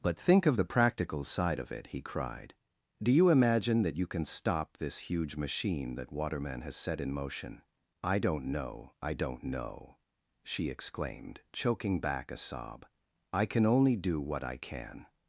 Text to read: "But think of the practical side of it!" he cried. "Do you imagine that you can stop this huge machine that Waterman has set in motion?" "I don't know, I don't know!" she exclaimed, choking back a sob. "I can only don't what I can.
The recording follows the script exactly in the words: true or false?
false